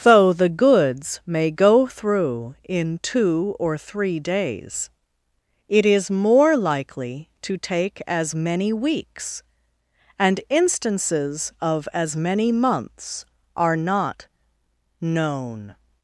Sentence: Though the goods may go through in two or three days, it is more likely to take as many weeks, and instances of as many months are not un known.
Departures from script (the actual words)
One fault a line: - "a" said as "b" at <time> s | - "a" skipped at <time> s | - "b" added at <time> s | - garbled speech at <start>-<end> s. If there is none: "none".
- "un" skipped at 14.3 s